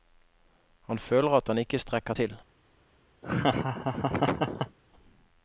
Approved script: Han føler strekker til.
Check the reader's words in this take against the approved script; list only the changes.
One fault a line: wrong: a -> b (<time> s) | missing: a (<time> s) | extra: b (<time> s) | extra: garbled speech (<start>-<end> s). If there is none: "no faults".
extra: at han ikke (1.4 s)